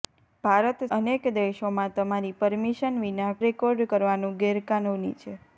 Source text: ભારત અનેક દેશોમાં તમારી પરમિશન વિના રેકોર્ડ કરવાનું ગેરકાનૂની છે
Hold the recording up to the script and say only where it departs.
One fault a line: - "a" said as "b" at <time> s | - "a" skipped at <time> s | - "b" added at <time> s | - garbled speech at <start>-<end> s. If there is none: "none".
none